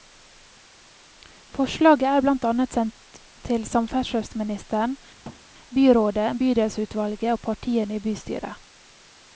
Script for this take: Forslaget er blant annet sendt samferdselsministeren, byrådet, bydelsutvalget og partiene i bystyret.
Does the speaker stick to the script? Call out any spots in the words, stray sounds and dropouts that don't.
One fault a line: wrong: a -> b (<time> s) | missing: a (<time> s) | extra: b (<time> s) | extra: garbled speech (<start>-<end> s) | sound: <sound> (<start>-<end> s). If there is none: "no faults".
extra: til (3.5 s)
sound: thud (5.2-5.4 s)